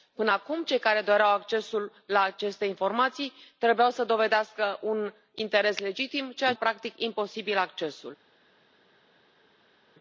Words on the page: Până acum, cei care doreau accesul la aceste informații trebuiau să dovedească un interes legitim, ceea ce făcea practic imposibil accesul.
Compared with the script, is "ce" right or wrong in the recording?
wrong